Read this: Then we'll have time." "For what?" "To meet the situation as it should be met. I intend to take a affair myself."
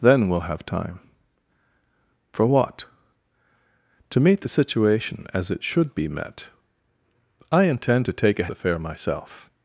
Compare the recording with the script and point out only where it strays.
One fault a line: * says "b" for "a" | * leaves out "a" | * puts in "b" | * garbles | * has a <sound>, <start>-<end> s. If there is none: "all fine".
all fine